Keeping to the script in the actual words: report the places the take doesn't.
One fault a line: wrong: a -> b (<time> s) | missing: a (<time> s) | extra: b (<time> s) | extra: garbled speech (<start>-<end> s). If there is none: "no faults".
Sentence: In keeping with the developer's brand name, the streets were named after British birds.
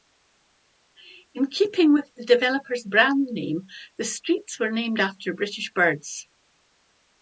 no faults